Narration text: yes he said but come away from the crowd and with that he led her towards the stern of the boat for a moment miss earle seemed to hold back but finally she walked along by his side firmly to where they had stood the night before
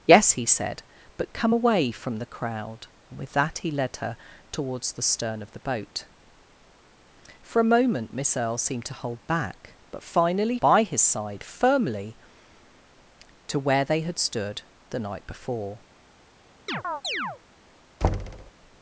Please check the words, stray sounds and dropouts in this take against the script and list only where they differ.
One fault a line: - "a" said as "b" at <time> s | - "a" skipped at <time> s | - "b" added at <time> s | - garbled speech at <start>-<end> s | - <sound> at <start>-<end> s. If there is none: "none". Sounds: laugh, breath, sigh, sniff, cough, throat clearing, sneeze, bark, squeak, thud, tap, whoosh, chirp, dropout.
- "she walked along" skipped at 10.6 s
- chirp at 16.7-17.4 s
- thud at 18.0-18.5 s